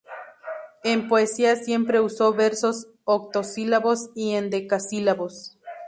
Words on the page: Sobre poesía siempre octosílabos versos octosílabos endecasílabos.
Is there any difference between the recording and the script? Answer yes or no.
yes